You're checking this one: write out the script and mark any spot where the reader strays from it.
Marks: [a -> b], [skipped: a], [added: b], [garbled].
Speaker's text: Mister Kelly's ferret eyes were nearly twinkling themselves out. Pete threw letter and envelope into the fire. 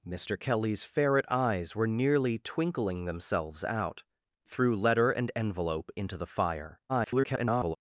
Mister Kelly's ferret eyes were nearly twinkling themselves out. [skipped: Pete] threw letter and envelope into the fire. [garbled]